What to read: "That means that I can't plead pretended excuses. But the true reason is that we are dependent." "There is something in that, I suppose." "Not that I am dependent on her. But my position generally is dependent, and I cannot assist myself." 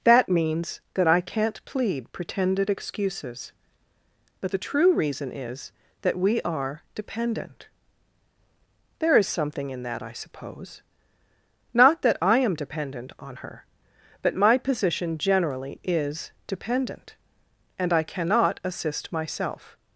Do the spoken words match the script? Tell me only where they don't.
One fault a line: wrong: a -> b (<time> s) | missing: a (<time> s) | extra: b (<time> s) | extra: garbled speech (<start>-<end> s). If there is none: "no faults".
no faults